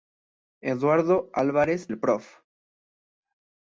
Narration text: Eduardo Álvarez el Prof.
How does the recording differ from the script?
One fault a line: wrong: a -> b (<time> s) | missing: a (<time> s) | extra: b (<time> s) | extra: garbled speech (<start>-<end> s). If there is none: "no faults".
no faults